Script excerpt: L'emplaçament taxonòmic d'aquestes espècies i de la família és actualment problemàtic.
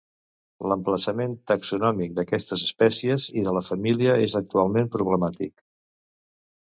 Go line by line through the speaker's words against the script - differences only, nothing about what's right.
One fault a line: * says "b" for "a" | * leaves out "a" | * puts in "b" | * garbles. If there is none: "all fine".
all fine